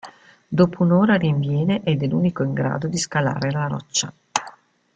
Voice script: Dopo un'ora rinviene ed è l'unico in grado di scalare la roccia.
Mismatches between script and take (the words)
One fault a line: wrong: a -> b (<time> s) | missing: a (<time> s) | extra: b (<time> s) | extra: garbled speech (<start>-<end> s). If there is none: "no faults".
no faults